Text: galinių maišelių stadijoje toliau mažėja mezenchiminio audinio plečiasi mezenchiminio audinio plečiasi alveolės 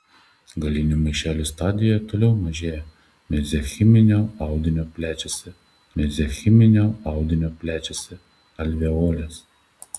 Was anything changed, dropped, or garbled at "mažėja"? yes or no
no